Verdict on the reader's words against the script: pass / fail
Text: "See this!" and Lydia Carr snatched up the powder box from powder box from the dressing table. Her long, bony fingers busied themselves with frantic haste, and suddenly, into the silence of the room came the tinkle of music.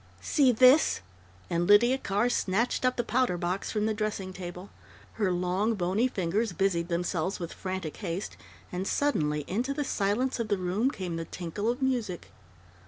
fail